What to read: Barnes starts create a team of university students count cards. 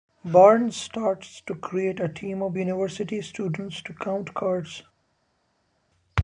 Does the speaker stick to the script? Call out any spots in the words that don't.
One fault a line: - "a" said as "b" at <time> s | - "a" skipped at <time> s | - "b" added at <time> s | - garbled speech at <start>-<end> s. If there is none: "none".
- "to" added at 1.4 s
- "to" added at 3.8 s